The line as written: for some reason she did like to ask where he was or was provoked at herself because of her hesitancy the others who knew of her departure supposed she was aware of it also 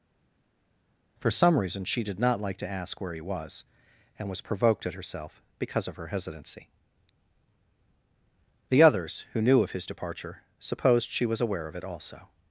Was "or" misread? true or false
true